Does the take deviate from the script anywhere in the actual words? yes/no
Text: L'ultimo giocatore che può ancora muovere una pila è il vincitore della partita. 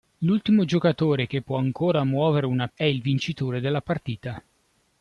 yes